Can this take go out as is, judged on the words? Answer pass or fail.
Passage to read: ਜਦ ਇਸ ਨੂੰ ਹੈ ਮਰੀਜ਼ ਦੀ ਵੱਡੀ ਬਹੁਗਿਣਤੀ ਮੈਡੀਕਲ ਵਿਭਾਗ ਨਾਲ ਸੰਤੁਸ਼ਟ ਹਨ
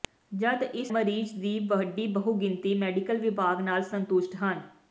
fail